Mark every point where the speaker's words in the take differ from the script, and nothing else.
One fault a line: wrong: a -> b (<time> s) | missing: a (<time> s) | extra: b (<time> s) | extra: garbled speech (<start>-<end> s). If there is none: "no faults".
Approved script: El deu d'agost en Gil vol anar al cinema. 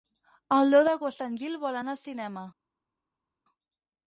no faults